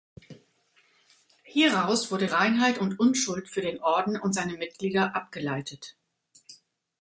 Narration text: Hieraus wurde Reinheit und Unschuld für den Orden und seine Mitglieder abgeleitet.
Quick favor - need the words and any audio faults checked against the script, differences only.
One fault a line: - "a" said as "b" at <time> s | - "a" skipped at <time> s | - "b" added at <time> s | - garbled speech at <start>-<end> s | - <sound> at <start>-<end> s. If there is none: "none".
none